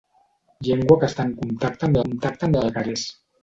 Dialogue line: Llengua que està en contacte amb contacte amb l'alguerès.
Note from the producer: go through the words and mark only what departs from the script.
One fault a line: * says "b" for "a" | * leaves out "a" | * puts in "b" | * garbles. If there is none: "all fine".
all fine